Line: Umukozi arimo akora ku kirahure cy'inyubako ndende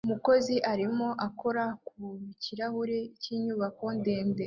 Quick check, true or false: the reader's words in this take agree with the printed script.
true